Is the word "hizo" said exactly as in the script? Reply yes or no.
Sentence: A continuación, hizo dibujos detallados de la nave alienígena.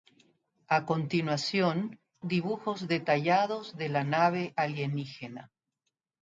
no